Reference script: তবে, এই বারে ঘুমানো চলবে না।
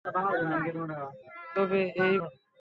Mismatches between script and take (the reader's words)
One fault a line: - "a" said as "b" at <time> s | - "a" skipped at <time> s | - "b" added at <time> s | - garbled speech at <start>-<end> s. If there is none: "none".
- "বারে ঘুমানো চলবে" skipped at 2.2 s